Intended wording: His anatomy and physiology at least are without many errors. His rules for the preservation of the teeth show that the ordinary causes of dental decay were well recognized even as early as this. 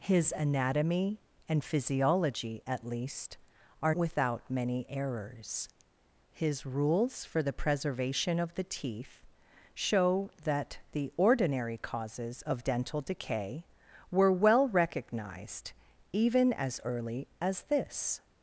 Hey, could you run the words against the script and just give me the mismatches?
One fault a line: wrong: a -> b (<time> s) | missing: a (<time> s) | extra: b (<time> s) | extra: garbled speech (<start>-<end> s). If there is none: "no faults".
no faults